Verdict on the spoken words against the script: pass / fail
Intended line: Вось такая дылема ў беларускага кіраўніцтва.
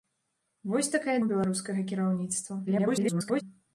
fail